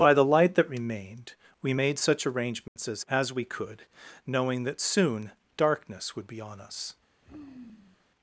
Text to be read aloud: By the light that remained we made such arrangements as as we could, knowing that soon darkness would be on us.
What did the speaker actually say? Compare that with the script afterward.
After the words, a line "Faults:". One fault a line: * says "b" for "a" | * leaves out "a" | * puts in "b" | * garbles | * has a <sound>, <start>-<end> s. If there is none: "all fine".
By the light that remained we made such arrangements as as we could, knowing that soon darkness would be on us.
Faults:
* has a dropout, 2.7-2.8 s
* has a sigh, 7.2-8.1 s